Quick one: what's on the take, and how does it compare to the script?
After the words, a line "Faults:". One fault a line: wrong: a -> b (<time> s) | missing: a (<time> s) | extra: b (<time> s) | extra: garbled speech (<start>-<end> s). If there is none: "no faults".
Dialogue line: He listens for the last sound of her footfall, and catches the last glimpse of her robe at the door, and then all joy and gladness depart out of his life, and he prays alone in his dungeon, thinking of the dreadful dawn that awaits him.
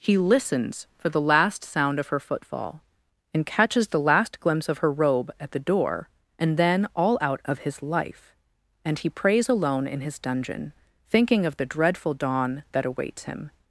He listens for the last sound of her footfall, and catches the last glimpse of her robe at the door, and then all out of his life, and he prays alone in his dungeon, thinking of the dreadful dawn that awaits him.
Faults:
missing: joy and gladness depart (7.2 s)